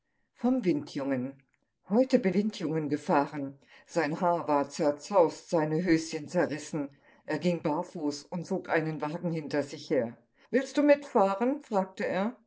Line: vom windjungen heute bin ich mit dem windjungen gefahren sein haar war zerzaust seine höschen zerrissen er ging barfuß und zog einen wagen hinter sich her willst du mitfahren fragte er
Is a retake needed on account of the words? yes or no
yes